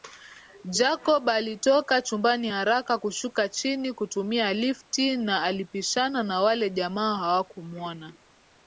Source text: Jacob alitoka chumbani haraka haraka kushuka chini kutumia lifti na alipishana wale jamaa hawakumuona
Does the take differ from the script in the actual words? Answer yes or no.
yes